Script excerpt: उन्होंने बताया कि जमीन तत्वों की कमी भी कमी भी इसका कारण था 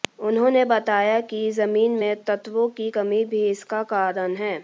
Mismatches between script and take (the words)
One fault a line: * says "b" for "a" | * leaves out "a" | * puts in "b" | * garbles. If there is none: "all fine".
* puts in "में"
* leaves out "कमी भी"
* says "है" for "था"